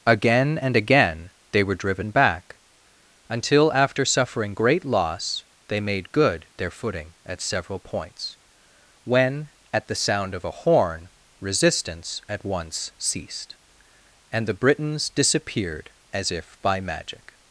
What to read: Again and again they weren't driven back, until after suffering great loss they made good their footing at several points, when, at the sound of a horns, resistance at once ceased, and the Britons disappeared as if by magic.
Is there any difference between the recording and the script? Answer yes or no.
yes